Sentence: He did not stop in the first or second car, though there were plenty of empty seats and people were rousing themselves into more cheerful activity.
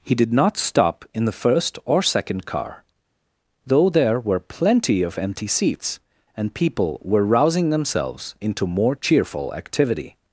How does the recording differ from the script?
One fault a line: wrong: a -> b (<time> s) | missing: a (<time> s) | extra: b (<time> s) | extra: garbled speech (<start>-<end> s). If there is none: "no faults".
no faults